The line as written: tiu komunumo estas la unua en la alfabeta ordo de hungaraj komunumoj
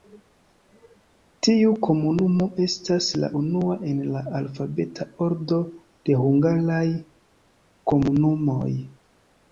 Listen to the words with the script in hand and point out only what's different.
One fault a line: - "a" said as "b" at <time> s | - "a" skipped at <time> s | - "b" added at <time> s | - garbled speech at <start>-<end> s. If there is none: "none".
none